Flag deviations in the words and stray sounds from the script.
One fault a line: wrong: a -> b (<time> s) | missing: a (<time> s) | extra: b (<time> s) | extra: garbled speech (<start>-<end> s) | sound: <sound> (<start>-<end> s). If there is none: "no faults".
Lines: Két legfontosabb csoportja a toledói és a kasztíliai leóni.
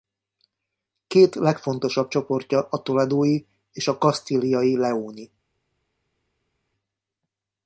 no faults